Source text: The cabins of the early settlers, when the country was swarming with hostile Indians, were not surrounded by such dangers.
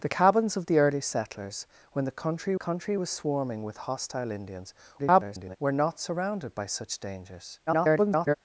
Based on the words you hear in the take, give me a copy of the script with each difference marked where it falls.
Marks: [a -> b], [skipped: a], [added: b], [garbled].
The cabins of the early settlers, when the country [added: country] was swarming with hostile Indians, [garbled] were not surrounded by such dangers. [garbled]